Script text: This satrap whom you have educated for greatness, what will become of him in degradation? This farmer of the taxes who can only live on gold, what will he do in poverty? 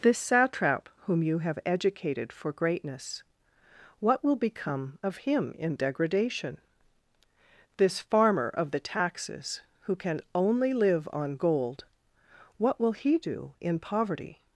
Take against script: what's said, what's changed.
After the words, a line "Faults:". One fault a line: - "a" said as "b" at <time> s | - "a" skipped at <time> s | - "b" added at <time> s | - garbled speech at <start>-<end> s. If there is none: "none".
This satrap whom you have educated for greatness, what will become of him in degradation? This farmer of the taxes who can only live on gold, what will he do in poverty?
Faults:
none